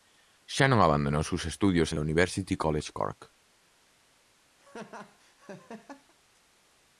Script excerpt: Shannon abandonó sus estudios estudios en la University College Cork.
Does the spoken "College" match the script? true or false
true